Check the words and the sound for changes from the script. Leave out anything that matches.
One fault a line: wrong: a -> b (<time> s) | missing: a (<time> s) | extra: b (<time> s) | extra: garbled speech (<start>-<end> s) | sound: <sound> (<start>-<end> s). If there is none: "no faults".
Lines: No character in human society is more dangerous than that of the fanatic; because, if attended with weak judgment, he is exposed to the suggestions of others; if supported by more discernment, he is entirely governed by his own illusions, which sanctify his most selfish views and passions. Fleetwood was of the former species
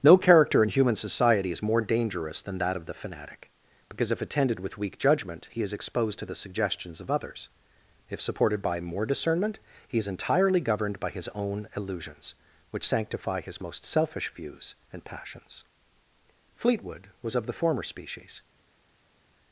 no faults